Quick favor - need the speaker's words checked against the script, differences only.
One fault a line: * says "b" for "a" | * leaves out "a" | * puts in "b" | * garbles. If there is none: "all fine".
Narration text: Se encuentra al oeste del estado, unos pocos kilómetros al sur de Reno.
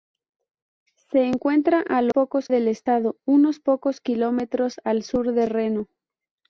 * says "pocos" for "oeste"